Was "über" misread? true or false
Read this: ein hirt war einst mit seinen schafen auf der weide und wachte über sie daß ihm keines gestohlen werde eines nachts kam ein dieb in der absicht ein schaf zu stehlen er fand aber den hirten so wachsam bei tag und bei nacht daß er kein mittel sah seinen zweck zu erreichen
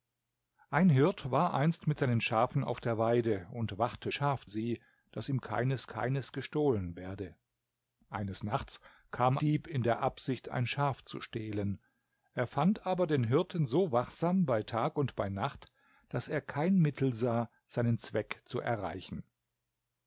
true